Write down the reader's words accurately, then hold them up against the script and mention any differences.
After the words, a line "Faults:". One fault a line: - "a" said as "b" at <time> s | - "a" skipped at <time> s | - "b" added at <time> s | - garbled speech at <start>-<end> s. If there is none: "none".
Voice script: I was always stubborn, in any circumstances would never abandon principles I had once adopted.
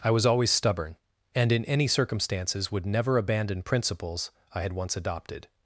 I was always stubborn, and in any circumstances would never abandon principles I had once adopted.
Faults:
- "and" added at 1.4 s